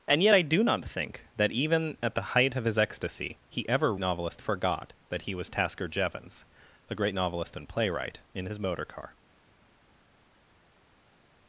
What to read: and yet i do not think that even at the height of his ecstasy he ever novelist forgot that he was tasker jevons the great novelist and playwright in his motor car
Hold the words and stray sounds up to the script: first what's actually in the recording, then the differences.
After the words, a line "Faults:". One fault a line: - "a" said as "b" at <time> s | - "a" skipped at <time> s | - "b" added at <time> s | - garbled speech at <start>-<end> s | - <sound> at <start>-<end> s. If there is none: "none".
and yet i do not think that even at the height of his ecstasy he ever novelist forgot that he was tasker jevons the great novelist and playwright in his motor car
Faults:
none